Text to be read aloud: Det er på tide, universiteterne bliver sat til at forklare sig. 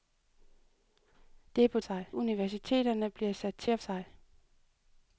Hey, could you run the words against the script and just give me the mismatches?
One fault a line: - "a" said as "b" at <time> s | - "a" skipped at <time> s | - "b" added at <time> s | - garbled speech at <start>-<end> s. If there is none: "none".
- "tide" said as "sig" at 1.8 s
- "forklare" skipped at 3.8 s